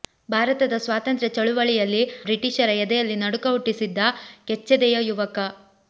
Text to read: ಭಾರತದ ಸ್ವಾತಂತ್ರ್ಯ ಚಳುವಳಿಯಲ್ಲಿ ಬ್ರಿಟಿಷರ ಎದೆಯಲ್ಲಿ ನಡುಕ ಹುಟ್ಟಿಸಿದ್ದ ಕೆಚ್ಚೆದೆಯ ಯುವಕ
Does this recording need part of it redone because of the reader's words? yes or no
no